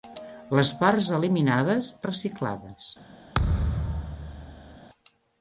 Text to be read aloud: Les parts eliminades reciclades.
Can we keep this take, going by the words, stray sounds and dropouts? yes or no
no